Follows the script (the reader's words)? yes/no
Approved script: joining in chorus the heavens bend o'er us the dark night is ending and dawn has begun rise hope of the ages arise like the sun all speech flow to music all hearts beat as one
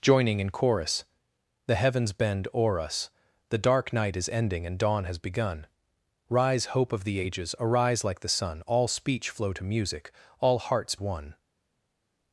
no